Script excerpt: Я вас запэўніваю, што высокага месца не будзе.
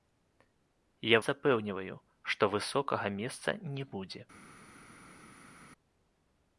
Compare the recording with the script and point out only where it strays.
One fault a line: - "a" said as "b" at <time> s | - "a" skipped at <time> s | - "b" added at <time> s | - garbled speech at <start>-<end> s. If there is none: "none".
- "вас" skipped at 1.2 s